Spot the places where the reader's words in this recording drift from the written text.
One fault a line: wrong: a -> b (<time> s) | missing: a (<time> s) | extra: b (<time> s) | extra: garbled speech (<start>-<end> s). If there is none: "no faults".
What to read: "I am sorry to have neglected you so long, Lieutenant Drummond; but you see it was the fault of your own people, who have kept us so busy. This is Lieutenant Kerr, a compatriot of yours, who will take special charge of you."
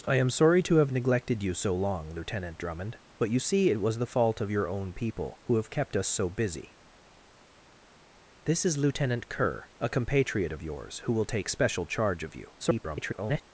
extra: garbled speech (12.6-13.4 s)